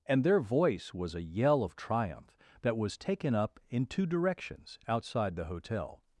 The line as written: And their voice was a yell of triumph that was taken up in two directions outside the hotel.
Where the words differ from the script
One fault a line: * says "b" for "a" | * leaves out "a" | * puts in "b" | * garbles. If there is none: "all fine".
all fine